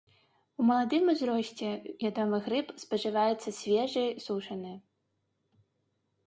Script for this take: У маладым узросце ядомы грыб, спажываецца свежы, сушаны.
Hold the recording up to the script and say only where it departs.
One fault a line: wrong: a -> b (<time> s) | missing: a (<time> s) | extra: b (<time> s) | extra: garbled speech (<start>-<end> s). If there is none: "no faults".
no faults